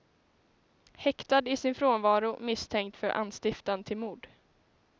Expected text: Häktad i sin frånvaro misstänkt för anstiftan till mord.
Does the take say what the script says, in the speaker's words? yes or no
yes